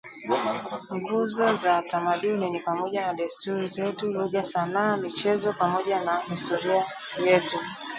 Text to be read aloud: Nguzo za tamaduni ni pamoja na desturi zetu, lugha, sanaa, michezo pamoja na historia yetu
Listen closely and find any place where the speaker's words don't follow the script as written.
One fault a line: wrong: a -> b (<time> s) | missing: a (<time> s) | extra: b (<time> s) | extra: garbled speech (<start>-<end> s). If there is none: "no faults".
no faults